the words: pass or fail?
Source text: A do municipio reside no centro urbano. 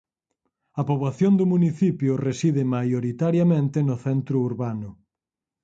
fail